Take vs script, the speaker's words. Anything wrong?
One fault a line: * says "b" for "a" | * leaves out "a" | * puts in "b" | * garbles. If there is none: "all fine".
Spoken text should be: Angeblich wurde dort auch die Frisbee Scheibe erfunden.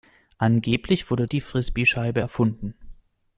* leaves out "dort auch"